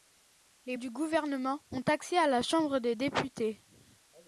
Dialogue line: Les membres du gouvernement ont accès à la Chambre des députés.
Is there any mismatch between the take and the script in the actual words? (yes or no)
yes